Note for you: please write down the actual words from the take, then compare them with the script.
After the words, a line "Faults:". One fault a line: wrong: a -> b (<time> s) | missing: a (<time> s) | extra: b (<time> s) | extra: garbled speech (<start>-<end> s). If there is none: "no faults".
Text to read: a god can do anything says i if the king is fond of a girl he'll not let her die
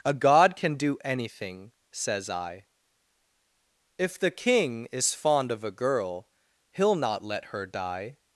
a god can do anything says i if the king is fond of a girl he'll not let her die
Faults:
no faults